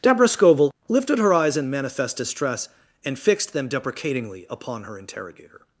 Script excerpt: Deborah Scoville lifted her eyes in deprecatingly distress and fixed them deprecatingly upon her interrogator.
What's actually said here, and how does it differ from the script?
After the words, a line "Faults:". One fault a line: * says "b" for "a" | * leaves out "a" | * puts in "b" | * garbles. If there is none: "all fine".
Deborah Scoville lifted her eyes in manifest distress and fixed them deprecatingly upon her interrogator.
Faults:
* says "manifest" for "deprecatingly"